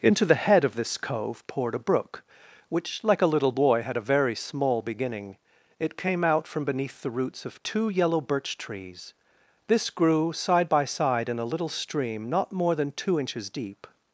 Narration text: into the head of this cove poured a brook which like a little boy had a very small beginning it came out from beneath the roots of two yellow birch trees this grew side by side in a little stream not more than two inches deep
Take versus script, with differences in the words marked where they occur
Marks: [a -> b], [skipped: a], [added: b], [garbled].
into the head of this cove poured a brook which like a little boy had a very small beginning it came out from beneath the roots of two yellow birch trees this grew side by side in a little stream not more than two inches deep